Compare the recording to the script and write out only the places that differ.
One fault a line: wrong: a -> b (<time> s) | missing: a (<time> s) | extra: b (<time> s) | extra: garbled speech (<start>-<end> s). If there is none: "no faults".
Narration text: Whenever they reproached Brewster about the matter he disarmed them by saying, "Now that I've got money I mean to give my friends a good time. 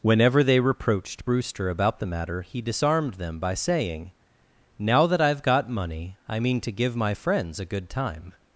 no faults